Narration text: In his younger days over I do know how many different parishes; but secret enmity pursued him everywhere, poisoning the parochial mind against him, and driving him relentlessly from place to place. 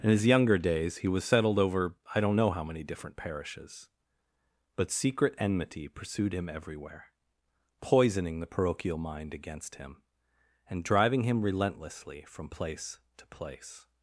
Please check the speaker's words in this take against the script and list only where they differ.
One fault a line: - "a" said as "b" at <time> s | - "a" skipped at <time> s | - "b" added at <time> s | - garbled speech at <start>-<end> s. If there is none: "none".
- "he was settled" added at 1.0 s
- "do" said as "don't" at 2.2 s